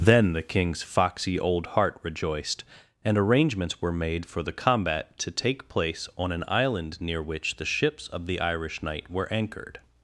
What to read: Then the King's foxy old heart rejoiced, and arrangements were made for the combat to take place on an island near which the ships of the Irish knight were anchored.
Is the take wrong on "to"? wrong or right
right